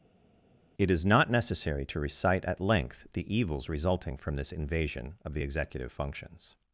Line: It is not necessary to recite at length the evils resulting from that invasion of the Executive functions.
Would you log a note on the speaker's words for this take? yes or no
yes